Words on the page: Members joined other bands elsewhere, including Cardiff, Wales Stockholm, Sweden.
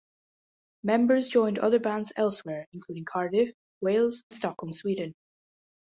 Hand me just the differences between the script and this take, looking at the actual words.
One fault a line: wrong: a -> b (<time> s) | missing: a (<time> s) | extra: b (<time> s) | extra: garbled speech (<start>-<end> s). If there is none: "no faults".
no faults